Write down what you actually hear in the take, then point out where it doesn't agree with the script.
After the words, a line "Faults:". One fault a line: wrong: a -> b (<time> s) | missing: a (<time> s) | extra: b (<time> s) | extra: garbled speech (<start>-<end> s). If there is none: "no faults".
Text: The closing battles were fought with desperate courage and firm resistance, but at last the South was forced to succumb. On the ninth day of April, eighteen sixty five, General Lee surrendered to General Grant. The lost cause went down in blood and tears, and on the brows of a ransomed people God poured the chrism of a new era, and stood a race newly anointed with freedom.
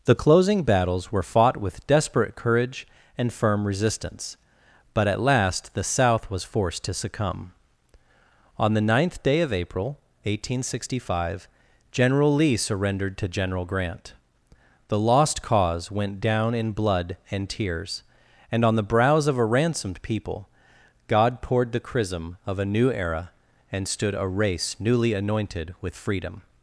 The closing battles were fought with desperate courage and firm resistance, but at last the South was forced to succumb. On the ninth day of April, eighteen sixty five, General Lee surrendered to General Grant. The lost cause went down in blood and tears, and on the brows of a ransomed people God poured the chrism of a new era, and stood a race newly anointed with freedom.
Faults:
no faults